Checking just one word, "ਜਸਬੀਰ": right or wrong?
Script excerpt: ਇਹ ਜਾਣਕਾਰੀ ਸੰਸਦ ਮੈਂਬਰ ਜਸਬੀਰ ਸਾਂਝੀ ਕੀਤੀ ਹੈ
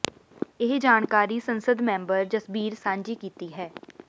right